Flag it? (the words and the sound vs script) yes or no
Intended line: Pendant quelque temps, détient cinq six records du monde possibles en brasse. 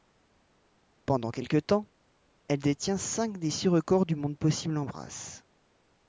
yes